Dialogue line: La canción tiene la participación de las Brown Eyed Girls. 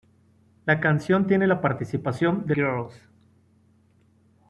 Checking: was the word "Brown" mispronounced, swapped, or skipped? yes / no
yes